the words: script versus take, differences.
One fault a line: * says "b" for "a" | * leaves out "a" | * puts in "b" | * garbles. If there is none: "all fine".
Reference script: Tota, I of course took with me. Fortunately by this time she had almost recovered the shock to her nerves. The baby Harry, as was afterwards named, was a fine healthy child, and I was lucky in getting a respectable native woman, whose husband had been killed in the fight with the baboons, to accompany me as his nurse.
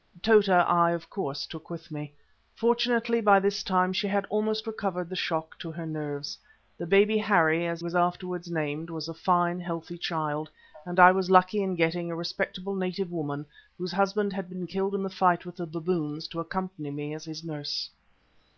all fine